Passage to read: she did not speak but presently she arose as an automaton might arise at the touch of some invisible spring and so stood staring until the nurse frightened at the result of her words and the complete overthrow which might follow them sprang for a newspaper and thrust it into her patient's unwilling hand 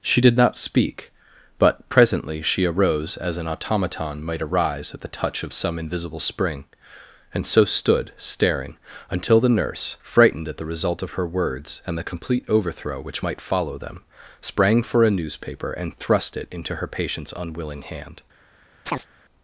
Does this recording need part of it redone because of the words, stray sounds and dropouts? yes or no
yes